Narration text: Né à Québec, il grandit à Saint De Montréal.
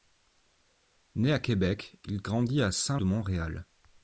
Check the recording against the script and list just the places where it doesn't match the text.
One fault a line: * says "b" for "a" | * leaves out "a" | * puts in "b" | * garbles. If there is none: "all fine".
all fine